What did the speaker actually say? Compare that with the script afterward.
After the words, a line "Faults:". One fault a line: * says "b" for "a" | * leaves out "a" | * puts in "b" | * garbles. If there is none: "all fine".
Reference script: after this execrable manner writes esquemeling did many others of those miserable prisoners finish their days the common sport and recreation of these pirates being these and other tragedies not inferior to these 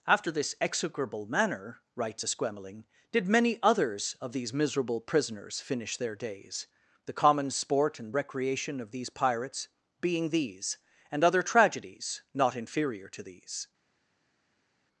after this execrable manner writes esquemeling did many others of these miserable prisoners finish their days the common sport and recreation of these pirates being these and other tragedies not inferior to these
Faults:
* says "these" for "those"